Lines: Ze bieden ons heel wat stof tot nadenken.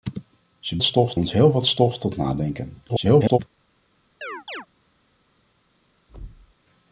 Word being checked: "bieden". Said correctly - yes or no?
no